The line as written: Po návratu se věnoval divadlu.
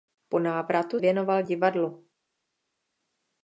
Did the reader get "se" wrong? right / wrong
wrong